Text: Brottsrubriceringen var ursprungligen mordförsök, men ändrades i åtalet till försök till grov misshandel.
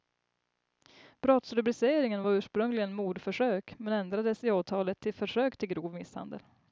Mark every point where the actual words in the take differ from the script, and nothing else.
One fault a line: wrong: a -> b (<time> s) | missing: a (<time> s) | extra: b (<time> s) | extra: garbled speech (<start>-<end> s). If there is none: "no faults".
no faults